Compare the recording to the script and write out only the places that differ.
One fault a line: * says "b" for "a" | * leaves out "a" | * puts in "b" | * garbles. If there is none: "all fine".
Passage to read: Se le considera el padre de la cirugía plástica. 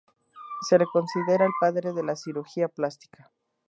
all fine